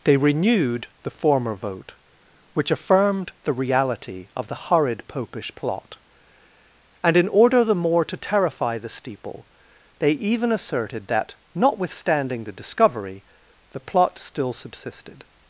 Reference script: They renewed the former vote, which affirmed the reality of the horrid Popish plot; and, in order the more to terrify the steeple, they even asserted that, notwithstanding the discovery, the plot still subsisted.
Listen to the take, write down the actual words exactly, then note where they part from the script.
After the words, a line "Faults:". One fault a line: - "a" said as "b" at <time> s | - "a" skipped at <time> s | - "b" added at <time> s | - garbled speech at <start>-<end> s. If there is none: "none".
They renewed the former vote, which affirmed the reality of the horrid Popish plot; and, in order the more to terrify the steeple, they even asserted that, notwithstanding the discovery, the plot still subsisted.
Faults:
none